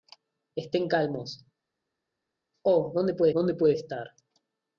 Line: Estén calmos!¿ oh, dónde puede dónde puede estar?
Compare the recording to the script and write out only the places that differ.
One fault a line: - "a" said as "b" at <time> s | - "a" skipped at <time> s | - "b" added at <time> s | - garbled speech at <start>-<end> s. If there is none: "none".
none